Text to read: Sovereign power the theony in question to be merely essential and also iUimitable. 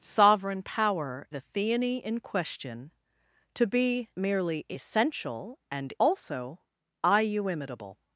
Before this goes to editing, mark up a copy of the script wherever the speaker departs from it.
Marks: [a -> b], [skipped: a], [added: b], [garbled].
Sovereign power the theony in question to be merely essential and also iUimitable.